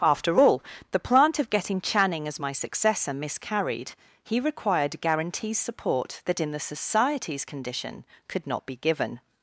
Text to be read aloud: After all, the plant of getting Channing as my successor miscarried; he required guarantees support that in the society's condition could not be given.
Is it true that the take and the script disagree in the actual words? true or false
false